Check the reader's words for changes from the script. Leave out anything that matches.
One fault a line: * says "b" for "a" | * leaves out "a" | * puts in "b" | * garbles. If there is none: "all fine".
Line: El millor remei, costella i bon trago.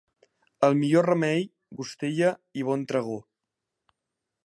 all fine